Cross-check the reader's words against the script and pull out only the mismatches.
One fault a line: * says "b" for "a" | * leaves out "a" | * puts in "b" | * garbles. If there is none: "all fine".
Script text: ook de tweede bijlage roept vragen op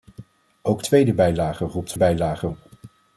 * leaves out "de"
* says "bijlage" for "vragen"